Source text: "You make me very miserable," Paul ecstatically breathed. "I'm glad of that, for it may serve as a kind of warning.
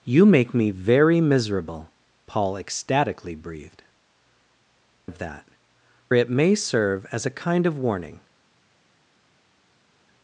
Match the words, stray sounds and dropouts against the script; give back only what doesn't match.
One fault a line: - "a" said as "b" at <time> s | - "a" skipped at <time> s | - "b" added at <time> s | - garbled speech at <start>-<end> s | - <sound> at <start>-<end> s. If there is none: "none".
- "I'm glad" skipped at 3.8 s
- "for" skipped at 5.5 s